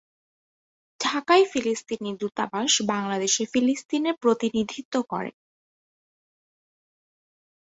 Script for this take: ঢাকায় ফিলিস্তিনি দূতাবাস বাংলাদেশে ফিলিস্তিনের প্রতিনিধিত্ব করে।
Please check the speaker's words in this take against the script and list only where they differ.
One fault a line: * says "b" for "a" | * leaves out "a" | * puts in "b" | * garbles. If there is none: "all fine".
all fine